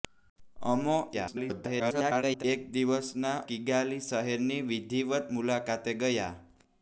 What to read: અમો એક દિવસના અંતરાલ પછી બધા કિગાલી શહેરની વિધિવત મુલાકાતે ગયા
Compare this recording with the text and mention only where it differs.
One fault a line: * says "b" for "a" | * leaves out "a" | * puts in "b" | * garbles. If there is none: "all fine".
* garbles
* leaves out "અંતરાલ પછી બધા"